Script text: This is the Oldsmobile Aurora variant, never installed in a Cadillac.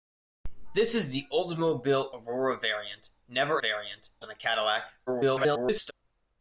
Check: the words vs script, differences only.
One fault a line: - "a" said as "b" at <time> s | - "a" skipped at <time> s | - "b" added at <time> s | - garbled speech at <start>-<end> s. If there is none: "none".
- "installed" said as "variant" at 3.6 s
- garbled speech at 5.1-5.9 s